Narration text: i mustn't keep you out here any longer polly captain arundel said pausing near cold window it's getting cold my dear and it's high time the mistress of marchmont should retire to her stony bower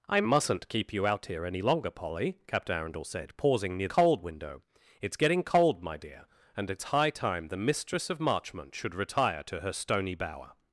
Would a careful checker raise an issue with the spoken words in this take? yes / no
no